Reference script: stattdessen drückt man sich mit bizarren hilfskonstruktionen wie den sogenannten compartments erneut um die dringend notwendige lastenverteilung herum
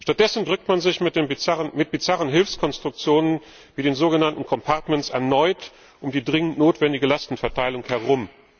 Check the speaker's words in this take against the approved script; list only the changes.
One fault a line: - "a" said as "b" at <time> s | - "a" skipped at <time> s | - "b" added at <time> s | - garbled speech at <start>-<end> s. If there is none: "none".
none